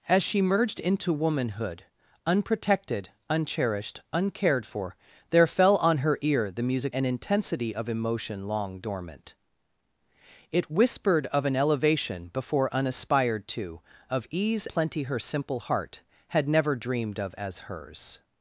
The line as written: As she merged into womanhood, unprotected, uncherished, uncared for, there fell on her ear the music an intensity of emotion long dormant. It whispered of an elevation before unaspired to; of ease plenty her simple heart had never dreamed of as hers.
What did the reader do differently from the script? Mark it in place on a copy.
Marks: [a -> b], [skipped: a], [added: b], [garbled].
As she merged into womanhood, unprotected, uncherished, uncared for, there fell on her ear the music an intensity of emotion long dormant. It whispered of an elevation before unaspired to; of ease plenty her simple heart had never dreamed of as hers.